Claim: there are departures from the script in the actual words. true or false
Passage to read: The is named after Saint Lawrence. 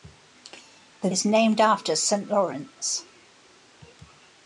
false